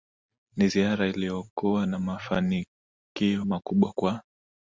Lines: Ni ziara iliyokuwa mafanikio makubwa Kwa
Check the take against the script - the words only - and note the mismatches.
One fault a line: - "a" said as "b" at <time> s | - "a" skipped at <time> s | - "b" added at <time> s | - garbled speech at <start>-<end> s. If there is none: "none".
- "na" added at 1.9 s